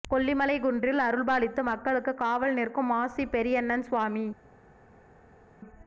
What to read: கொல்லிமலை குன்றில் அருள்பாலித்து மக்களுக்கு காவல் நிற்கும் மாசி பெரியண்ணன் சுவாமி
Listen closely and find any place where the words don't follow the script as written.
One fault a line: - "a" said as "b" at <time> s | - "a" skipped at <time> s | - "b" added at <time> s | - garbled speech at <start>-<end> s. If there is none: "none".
none